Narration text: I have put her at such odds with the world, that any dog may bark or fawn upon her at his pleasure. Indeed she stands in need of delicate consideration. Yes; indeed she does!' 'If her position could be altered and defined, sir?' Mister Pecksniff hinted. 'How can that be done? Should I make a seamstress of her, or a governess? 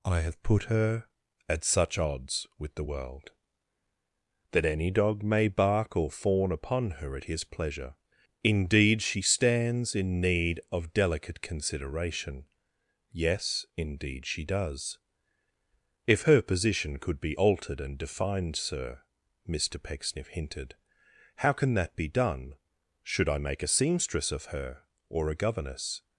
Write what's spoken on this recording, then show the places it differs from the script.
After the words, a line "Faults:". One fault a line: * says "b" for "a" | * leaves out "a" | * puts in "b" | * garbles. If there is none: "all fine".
I have put her at such odds with the world, that any dog may bark or fawn upon her at his pleasure. Indeed she stands in need of delicate consideration. Yes; indeed she does!' 'If her position could be altered and defined, sir?' Mister Pecksniff hinted. 'How can that be done? Should I make a seamstress of her, or a governess?
Faults:
all fine